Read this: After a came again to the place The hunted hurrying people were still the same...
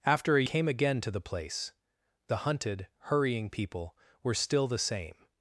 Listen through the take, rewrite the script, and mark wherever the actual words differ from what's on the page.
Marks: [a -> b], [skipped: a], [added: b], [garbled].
After a came again to the place The hunted hurrying people were still the same...